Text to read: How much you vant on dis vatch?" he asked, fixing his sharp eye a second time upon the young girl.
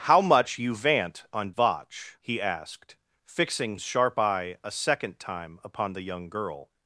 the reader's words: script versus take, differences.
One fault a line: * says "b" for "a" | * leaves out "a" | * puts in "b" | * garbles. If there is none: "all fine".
* leaves out "dis"
* leaves out "his"